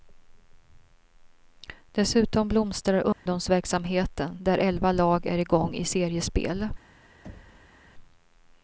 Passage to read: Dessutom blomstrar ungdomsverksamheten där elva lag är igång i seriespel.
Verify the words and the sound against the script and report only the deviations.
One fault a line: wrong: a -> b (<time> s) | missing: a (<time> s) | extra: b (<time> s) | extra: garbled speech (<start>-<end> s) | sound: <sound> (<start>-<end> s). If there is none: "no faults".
sound: dropout (3.1-3.3 s)
sound: thud (7.2-7.8 s)